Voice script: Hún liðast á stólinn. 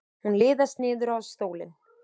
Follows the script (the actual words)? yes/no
no